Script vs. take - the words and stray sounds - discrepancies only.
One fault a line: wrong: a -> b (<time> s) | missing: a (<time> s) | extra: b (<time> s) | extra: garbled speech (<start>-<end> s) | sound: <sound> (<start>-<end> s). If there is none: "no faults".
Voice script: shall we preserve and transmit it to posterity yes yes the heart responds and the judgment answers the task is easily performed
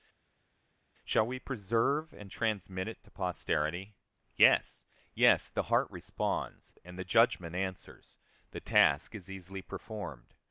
no faults